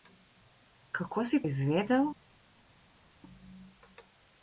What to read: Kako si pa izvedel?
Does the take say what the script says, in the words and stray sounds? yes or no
no